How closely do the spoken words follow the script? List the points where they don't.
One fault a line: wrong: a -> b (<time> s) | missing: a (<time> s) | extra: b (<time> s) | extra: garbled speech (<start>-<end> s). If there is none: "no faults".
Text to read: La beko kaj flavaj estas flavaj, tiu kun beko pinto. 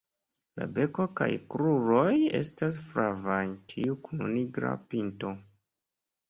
wrong: flavaj -> kruroj (1.6 s)
wrong: beko -> nigra (4.4 s)